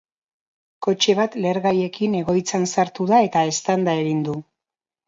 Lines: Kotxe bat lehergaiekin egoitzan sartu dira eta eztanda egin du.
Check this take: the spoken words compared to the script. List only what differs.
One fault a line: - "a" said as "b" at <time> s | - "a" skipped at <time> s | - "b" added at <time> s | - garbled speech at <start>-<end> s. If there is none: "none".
- "dira" said as "da" at 3.1 s